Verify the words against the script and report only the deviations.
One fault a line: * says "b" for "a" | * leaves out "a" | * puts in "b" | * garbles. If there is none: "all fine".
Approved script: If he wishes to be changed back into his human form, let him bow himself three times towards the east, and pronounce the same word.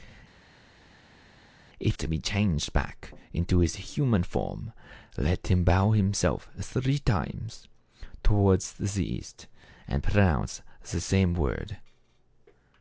* leaves out "he wishes"